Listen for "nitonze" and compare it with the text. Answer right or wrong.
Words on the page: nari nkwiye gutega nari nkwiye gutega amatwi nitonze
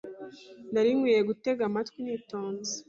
right